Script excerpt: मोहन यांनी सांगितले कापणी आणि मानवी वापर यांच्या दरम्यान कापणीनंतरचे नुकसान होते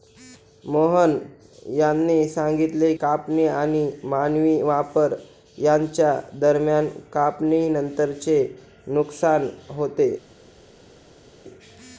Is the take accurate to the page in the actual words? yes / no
yes